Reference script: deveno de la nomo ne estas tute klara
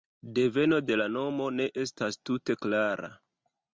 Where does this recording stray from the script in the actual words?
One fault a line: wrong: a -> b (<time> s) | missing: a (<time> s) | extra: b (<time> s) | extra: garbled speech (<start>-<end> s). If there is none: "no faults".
no faults